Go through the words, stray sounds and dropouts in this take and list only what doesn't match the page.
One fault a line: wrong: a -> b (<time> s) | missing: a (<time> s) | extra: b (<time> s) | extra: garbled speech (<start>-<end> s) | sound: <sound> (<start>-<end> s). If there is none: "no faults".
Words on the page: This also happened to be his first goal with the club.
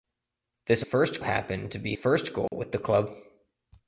wrong: also -> first (0.8 s)
missing: his (1.9 s)
sound: dropout (2.5-2.5 s)